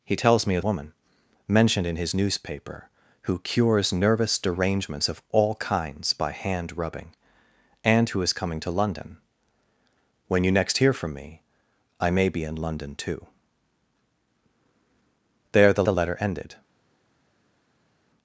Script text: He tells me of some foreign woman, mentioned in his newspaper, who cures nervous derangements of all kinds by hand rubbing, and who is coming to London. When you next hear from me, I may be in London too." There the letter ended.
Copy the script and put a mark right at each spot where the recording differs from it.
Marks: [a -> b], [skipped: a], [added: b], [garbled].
He tells me of [skipped: some foreign] woman, mentioned in his newspaper, who cures nervous derangements of all kinds by hand rubbing, and who is coming to London. When you next hear from me, I may be in London too." There the [added: the] letter ended.